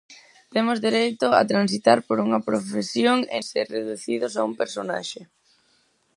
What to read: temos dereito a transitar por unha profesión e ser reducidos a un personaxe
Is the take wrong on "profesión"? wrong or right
right